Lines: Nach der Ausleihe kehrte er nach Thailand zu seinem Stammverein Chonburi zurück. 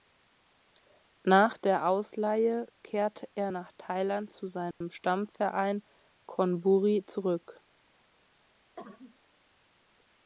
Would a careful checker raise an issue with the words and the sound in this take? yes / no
yes